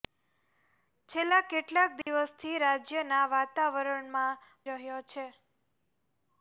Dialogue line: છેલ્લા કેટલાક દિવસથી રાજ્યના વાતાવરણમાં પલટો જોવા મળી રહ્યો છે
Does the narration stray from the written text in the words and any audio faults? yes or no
yes